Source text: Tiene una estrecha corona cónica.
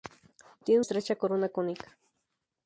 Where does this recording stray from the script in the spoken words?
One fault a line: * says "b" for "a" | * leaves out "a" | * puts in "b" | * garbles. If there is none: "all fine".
* leaves out "una"